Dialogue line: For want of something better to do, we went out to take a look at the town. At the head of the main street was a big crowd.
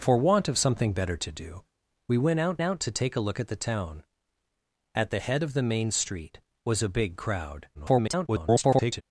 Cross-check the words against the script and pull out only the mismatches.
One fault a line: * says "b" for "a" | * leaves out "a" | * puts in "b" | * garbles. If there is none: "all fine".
* puts in "out"
* garbles